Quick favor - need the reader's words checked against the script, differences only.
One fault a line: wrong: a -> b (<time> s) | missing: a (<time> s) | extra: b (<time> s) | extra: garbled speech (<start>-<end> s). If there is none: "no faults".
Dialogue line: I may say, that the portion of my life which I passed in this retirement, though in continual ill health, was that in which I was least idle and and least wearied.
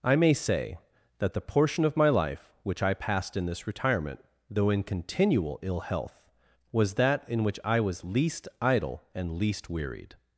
missing: and (9.4 s)